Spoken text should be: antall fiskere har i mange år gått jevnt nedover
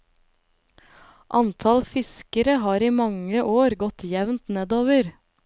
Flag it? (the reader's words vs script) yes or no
no